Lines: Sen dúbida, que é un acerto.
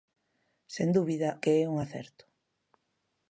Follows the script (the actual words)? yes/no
yes